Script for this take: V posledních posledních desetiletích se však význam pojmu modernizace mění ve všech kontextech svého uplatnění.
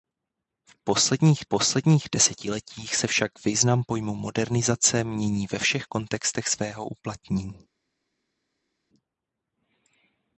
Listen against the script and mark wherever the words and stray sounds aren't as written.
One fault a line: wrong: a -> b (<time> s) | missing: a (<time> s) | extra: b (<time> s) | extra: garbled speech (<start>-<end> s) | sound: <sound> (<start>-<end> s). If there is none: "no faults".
no faults